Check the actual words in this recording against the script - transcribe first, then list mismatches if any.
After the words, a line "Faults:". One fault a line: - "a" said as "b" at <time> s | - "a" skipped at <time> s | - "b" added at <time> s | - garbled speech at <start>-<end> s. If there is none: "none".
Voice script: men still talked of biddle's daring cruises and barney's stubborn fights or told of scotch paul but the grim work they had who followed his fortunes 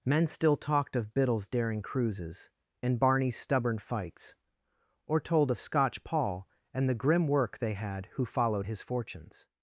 men still talked of biddle's daring cruises and barney's stubborn fights or told of scotch paul and the grim work they had who followed his fortunes
Faults:
- "but" said as "and" at 6.7 s